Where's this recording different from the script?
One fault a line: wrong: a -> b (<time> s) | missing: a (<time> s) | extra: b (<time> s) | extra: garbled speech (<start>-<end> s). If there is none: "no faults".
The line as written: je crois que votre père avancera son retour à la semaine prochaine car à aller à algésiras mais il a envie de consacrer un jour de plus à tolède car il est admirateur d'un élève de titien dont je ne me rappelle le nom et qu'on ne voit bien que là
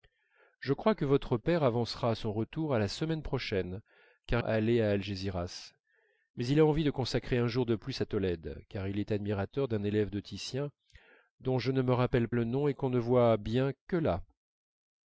no faults